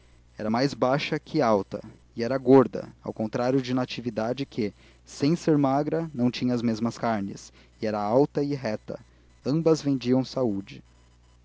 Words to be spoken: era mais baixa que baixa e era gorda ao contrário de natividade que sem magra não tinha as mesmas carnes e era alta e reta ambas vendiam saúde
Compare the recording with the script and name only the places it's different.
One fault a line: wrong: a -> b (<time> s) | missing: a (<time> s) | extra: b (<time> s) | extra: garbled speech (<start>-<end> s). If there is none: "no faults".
wrong: baixa -> alta (1.4 s)
extra: ser (5.3 s)